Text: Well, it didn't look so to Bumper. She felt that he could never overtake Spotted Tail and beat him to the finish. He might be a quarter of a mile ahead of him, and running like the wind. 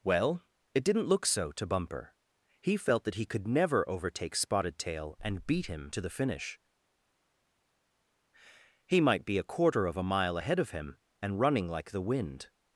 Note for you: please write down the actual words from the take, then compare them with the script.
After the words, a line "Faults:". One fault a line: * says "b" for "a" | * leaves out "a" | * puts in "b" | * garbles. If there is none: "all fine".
Well, it didn't look so to Bumper. He felt that he could never overtake Spotted Tail and beat him to the finish. He might be a quarter of a mile ahead of him, and running like the wind.
Faults:
* says "He" for "She"